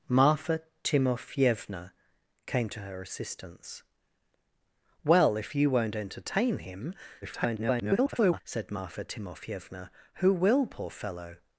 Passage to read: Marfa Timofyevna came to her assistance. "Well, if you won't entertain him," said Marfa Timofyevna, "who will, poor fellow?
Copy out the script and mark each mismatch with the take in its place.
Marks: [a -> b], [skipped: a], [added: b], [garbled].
Marfa Timofyevna came to her assistance. "Well, if you won't entertain him," [garbled] said Marfa Timofyevna, "who will, poor fellow?